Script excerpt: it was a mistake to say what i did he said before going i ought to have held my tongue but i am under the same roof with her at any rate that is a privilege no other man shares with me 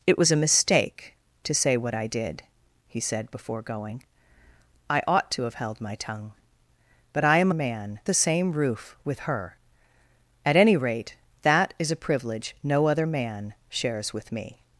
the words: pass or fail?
fail